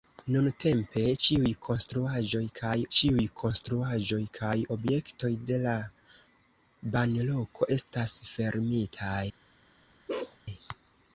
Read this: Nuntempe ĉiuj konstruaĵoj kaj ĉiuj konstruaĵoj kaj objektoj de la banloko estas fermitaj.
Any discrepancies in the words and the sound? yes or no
yes